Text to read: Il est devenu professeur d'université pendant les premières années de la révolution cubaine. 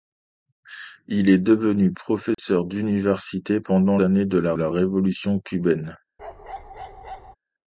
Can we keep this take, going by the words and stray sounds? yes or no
no